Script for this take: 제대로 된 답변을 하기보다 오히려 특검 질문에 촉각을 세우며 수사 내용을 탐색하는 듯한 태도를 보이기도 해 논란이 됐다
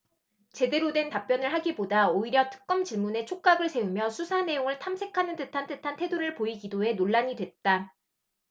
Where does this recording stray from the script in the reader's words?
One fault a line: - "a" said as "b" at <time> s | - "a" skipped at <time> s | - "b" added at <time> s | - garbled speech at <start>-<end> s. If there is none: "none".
- "듯한" added at 5.7 s